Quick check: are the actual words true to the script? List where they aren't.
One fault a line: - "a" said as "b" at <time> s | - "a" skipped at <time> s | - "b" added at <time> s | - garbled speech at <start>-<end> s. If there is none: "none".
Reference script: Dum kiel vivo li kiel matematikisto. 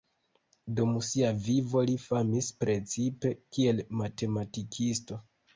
- "kiel" said as "sia" at 1.1 s
- "famis precipe" added at 2.0 s